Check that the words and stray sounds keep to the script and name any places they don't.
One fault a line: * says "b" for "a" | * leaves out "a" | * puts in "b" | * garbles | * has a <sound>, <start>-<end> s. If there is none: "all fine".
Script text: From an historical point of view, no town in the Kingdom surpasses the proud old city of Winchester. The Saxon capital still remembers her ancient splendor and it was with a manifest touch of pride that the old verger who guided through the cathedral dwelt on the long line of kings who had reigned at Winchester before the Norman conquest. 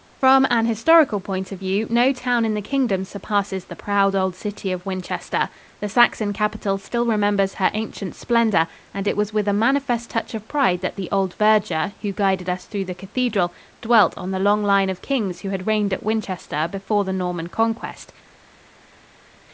* puts in "us"